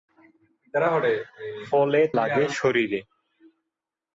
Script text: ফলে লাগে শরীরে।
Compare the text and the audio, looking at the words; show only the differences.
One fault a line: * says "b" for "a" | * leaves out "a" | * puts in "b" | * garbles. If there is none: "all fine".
all fine